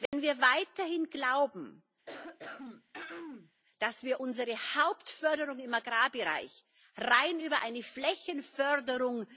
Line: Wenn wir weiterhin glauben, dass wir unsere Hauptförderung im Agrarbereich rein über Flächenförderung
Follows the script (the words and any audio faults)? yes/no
no